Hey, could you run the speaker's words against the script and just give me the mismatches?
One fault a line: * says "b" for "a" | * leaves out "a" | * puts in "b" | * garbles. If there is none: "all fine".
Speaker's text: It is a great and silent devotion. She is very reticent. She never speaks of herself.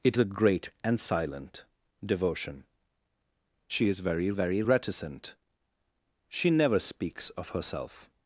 * leaves out "is"
* puts in "very"